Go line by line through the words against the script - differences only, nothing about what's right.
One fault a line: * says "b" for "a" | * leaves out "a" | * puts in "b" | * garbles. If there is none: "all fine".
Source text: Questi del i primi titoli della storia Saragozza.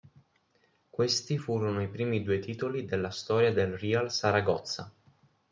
* says "furono" for "del"
* puts in "due"
* puts in "del Real"